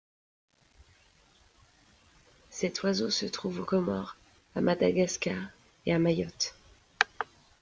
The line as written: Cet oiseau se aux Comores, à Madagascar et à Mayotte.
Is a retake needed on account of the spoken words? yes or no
yes